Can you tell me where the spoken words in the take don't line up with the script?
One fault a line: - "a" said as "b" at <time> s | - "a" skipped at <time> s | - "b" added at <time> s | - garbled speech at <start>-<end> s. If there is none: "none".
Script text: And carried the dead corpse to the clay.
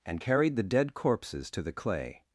- "corpse" said as "corpses" at 0.9 s